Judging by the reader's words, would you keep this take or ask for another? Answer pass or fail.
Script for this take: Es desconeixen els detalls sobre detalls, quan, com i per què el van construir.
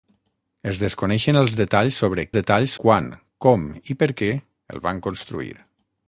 pass